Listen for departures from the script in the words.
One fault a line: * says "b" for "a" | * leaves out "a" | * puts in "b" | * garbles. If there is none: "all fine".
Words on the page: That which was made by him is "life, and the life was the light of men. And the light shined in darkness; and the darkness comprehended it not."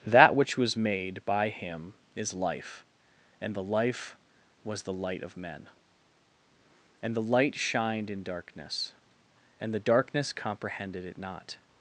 all fine